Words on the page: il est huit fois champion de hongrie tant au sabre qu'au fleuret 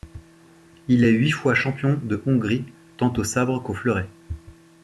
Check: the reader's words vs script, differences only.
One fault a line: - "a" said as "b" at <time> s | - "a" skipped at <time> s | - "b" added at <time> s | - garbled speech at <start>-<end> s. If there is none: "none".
none